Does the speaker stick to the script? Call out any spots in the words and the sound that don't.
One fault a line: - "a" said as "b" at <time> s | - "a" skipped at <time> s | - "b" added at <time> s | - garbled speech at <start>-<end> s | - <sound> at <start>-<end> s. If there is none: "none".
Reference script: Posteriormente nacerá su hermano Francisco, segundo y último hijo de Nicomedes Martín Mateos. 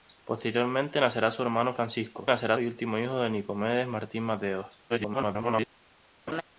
- "segundo" said as "nacerá" at 2.3 s
- garbled speech at 4.9-5.7 s
- laugh at 6.3-6.4 s